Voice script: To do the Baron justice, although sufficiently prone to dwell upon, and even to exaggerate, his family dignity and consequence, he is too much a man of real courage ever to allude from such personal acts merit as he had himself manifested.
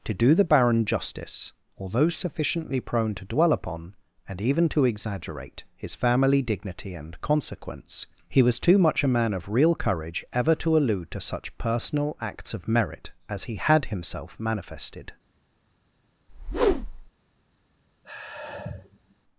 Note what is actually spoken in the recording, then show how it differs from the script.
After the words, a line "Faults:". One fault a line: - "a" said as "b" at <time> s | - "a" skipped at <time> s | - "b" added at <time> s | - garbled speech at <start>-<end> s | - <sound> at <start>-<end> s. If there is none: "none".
To do the Baron justice, although sufficiently prone to dwell upon, and even to exaggerate, his family dignity and consequence, he was too much a man of real courage ever to allude to such personal acts of merit as he had himself manifested.
Faults:
- "is" said as "was" at 8.4 s
- "from" said as "to" at 11.1 s
- "of" added at 12.6 s
- whoosh at 16.3-17.1 s
- sigh at 18.0-19.1 s